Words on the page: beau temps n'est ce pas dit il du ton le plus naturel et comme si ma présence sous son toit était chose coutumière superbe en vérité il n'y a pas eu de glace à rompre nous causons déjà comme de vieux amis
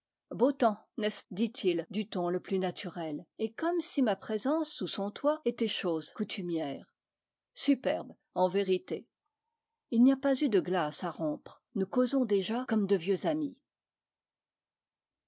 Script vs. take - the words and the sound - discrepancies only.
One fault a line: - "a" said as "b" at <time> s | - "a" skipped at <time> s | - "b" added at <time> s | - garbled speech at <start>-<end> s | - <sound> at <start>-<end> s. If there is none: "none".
- "pas" skipped at 1.2 s